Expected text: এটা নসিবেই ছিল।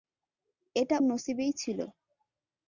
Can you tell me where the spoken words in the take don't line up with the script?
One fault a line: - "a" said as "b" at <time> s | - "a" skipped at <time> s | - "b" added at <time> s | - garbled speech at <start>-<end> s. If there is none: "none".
none